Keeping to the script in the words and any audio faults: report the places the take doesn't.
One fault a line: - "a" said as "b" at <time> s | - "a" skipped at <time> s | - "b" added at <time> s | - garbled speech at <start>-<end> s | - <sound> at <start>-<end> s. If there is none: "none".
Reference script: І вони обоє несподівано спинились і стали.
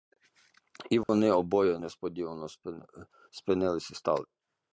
- dropout at 1.0-1.1 s